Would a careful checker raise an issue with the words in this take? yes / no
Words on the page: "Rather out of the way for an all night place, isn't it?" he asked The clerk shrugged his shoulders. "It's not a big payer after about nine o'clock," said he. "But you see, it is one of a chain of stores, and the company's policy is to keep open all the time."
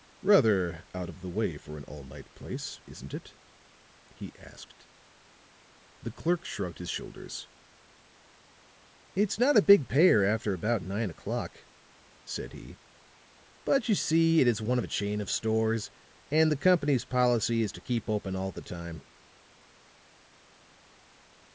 no